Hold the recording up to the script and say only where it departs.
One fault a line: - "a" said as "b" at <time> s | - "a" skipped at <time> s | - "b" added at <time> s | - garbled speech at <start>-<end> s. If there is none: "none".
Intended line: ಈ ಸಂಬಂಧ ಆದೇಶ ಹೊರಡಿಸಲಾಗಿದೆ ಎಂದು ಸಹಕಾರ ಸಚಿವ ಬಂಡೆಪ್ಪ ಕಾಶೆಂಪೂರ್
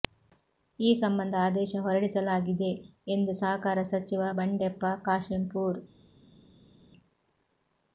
none